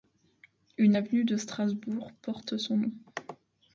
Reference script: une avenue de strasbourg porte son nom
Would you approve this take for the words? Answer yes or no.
yes